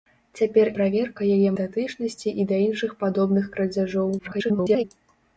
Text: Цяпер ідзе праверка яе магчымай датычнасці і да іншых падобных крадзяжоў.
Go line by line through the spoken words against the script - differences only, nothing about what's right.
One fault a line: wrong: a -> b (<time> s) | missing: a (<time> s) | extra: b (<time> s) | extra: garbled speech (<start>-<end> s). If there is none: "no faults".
missing: ідзе (0.7 s)
missing: магчымай (1.5 s)
extra: garbled speech (4.2-4.8 s)